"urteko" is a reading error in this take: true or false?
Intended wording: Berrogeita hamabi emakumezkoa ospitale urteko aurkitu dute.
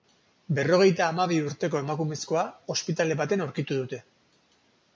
true